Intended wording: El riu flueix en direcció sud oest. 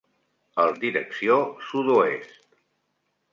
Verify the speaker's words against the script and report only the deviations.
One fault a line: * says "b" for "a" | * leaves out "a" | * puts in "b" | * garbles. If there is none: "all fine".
* leaves out "riu flueix"